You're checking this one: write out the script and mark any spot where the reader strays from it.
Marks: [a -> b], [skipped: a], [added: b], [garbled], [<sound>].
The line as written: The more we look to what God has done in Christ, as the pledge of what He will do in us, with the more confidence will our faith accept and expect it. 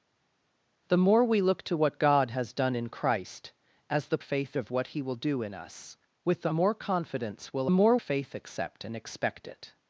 The more we look to what God has done in Christ, as the [pledge -> faith] of what He will do in us, with the more confidence will [our -> more] faith accept and expect it.